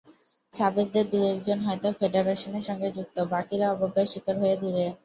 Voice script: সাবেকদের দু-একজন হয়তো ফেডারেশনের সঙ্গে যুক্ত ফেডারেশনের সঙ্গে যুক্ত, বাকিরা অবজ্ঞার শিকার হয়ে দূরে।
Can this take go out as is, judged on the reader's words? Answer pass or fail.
fail